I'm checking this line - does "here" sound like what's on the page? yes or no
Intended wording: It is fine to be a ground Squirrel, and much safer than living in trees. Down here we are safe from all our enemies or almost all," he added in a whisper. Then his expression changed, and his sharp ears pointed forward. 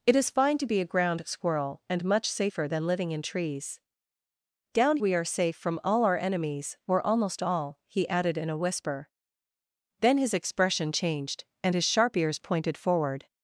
no